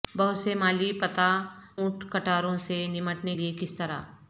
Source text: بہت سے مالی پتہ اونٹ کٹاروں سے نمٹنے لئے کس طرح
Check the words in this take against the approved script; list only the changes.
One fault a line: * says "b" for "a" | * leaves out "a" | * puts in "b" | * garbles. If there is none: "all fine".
all fine